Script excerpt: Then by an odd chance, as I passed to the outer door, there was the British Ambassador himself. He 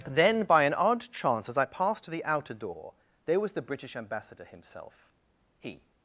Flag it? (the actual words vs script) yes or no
no